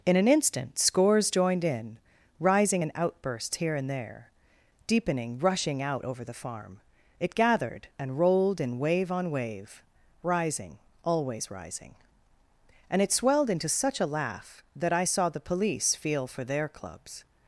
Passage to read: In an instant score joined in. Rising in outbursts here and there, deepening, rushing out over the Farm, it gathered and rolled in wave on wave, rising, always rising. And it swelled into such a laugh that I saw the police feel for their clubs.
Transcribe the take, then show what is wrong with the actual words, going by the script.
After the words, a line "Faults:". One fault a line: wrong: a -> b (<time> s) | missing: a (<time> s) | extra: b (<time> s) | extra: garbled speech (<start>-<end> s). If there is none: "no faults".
In an instant scores joined in. Rising in outbursts here and there, deepening, rushing out over the Farm, it gathered and rolled in wave on wave, rising, always rising. And it swelled into such a laugh that I saw the police feel for their clubs.
Faults:
wrong: score -> scores (0.8 s)